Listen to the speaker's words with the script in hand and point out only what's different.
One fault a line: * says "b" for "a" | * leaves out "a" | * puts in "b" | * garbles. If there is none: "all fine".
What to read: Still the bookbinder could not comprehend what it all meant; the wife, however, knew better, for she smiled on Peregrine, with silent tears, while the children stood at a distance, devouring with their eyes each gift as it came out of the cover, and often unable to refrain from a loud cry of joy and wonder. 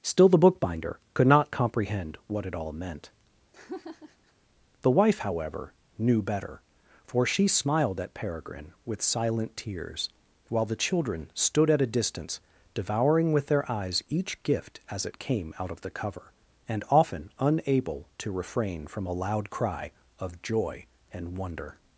* says "at" for "on"